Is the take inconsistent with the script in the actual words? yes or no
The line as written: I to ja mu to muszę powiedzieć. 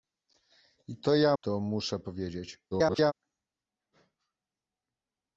yes